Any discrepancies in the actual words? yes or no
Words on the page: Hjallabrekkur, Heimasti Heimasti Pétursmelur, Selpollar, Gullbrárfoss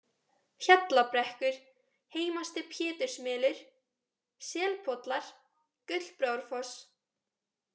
yes